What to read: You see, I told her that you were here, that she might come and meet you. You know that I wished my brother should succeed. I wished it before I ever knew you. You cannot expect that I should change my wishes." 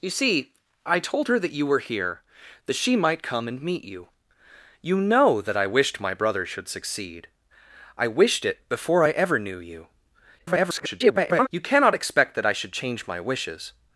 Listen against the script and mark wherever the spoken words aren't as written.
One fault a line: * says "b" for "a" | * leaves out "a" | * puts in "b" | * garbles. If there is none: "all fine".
* garbles